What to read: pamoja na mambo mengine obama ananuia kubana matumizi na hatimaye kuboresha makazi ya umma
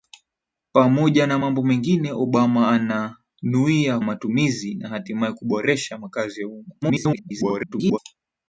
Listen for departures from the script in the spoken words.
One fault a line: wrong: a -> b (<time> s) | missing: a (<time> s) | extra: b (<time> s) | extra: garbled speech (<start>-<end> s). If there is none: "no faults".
missing: kubana (4.0 s)
extra: garbled speech (6.8-8.0 s)